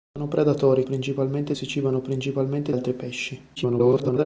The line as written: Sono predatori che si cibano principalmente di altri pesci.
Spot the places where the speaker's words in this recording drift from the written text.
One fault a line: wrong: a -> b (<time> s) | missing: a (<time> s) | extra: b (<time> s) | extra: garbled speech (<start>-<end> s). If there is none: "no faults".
wrong: che -> principalmente (0.8 s)
missing: di (2.7 s)
extra: garbled speech (3.6-4.3 s)